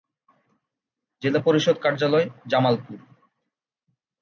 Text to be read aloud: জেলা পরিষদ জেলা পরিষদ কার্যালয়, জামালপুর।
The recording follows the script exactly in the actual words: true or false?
false